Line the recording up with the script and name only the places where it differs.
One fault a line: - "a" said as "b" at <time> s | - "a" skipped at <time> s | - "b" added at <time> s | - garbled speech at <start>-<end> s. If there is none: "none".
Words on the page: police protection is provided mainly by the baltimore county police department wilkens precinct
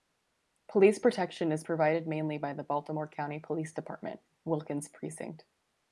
none